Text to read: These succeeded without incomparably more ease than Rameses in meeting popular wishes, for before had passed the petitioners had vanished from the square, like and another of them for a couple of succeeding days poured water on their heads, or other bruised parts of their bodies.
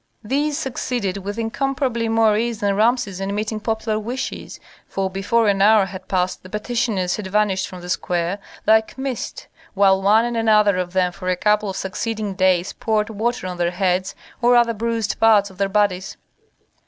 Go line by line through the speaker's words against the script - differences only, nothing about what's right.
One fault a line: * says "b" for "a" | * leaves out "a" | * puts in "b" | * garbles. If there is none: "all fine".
* says "with" for "without"
* puts in "an hour"
* puts in "mist while one"